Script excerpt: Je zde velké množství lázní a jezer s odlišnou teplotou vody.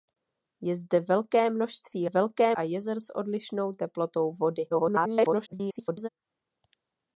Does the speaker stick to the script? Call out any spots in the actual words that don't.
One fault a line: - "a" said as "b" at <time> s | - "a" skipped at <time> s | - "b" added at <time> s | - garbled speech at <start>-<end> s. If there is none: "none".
- "lázní" said as "velké" at 2.0 s
- garbled speech at 4.7-6.1 s